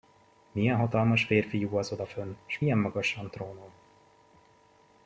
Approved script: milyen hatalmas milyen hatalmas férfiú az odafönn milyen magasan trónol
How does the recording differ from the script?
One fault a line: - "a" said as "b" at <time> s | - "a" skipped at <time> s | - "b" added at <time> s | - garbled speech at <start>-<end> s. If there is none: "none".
- "milyen hatalmas" skipped at 1.2 s
- "s" added at 2.5 s